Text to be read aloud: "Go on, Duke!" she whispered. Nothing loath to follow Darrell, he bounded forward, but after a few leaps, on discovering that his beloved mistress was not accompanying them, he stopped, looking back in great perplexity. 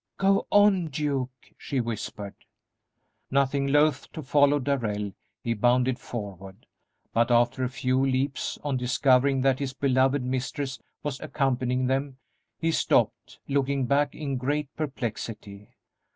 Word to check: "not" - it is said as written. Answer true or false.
false